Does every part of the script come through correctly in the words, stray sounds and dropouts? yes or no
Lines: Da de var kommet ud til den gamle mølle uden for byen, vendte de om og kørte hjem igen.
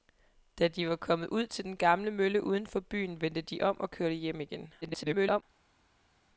no